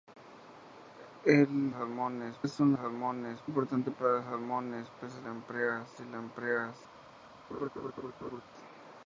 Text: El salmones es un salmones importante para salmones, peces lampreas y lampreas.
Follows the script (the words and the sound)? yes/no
no